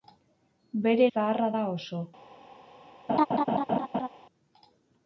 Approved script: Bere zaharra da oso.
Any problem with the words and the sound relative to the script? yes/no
yes